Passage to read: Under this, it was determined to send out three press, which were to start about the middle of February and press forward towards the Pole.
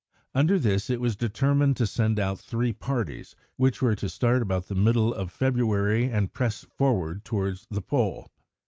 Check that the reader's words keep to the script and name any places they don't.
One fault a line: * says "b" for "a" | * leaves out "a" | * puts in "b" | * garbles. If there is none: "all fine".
* says "parties" for "press"